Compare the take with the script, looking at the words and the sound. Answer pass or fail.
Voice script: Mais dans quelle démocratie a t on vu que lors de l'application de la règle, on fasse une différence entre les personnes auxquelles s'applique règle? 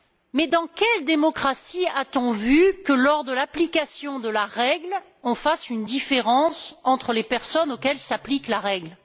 fail